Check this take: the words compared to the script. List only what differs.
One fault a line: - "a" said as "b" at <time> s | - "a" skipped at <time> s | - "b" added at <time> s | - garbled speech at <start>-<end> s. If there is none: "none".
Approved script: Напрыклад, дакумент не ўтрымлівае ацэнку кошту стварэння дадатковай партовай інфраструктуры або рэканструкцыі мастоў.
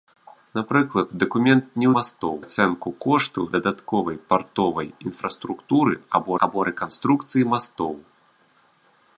- "ўтрымлівае" said as "мастоў" at 2.0 s
- "стварэння" skipped at 3.4 s
- "або" added at 6.5 s